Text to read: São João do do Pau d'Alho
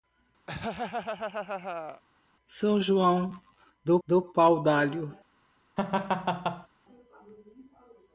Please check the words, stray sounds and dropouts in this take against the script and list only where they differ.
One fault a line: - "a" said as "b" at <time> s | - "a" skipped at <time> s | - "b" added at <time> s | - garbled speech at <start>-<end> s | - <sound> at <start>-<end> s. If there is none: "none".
- laugh at 0.5-2.0 s
- laugh at 5.8-6.7 s